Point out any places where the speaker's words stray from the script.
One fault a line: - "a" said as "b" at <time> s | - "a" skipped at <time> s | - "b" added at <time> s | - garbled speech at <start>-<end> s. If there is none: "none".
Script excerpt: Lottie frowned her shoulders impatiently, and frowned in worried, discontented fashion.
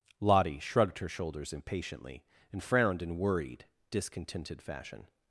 - "frowned" said as "shrugged" at 0.6 s